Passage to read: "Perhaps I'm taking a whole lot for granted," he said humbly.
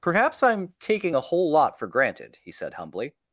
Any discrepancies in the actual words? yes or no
no